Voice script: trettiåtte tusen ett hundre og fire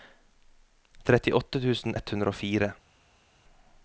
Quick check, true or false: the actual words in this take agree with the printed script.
true